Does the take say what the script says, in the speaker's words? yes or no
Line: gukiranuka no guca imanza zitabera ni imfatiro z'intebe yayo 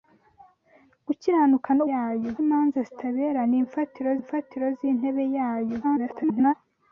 no